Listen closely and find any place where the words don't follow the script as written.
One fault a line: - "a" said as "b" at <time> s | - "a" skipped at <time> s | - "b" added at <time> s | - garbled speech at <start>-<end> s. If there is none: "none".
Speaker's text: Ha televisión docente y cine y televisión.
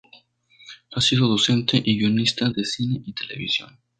- "televisión" said as "sido" at 1.0 s
- "guionista de" added at 2.0 s